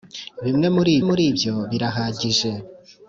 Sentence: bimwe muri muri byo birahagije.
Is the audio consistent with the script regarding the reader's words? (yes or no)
yes